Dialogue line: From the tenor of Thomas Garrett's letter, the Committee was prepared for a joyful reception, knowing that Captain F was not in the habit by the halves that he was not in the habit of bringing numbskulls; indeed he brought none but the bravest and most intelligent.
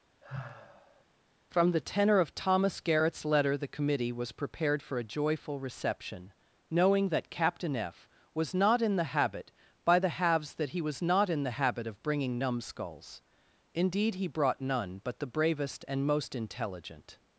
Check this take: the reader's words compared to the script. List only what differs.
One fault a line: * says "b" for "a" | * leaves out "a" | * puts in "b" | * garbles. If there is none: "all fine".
all fine